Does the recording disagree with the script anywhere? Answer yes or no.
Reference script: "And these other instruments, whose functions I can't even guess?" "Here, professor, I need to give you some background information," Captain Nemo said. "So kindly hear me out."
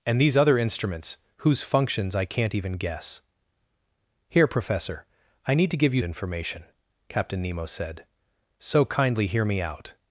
yes